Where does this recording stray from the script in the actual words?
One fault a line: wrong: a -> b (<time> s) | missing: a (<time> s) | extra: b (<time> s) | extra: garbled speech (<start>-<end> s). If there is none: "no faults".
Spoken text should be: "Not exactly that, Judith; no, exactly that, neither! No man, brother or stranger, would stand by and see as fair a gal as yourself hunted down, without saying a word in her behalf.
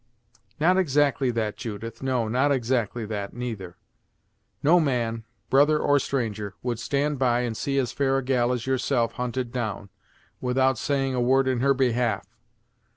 extra: not (2.3 s)